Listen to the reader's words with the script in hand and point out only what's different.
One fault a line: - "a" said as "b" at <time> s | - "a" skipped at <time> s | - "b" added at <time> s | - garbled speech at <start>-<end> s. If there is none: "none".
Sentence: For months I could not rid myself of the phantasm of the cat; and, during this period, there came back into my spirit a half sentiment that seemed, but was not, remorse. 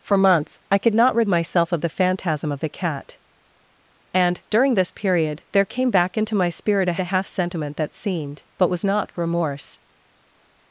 - "a" added at 7.0 s